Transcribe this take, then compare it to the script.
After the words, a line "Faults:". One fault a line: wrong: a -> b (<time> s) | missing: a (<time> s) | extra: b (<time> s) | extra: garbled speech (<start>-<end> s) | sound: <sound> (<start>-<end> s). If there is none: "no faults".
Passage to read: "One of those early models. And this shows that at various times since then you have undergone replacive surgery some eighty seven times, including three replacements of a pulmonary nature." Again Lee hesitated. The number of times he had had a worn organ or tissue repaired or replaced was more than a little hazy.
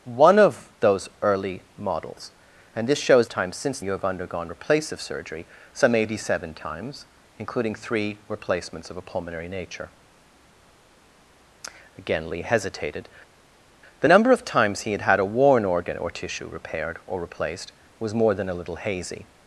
"One of those early models. And this shows times since you have undergone replacive surgery some eighty seven times, including three replacements of a pulmonary nature." Again Lee hesitated. The number of times he had had a worn organ or tissue repaired or replaced was more than a little hazy.
Faults:
missing: that at various (3.3 s)
missing: then (3.8 s)